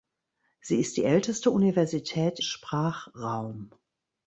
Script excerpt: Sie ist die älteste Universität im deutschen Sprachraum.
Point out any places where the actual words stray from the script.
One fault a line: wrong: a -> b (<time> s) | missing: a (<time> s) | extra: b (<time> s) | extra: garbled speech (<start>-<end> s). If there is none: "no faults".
missing: im deutschen (2.4 s)